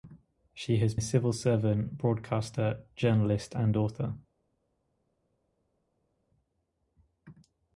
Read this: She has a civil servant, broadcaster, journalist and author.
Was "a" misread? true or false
false